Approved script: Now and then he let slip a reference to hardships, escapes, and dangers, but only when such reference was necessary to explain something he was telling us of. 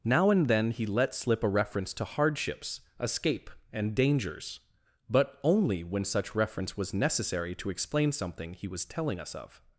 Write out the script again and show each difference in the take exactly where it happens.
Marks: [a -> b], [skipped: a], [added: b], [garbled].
Now and then he let slip a reference to hardships, [escapes, -> escape] and dangers, but only when such reference was necessary to explain something he was telling us of.